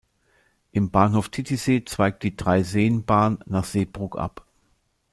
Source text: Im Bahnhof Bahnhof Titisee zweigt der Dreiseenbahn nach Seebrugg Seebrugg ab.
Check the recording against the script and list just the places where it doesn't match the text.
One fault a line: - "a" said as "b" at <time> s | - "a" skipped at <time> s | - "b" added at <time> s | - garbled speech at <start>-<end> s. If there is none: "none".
- "Bahnhof" skipped at 1.3 s
- "der" said as "die" at 2.2 s
- "Seebrugg" skipped at 4.2 s